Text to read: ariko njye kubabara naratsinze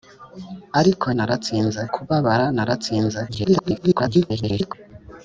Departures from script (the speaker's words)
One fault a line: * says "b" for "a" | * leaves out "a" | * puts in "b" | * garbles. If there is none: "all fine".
* says "naratsinze" for "njye"
* garbles